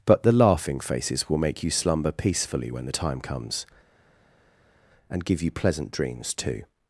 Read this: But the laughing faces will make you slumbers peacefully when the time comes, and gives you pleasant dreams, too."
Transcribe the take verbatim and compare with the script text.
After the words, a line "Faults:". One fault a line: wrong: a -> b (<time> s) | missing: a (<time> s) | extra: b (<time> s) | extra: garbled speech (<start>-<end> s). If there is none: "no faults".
But the laughing faces will make you slumber peacefully when the time comes, and give you pleasant dreams, too."
Faults:
wrong: slumbers -> slumber (1.7 s)
wrong: gives -> give (5.2 s)